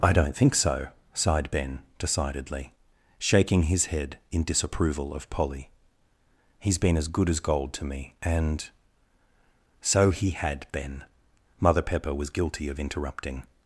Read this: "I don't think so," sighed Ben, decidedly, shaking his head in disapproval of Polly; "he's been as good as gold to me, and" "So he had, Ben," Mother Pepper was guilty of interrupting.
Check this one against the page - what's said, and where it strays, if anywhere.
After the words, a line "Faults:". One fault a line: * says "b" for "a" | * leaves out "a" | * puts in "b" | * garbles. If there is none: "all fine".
"I don't think so," sighed Ben, decidedly, shaking his head in disapproval of Polly; "he's been as good as gold to me, and" "So he had, Ben," Mother Pepper was guilty of interrupting.
Faults:
all fine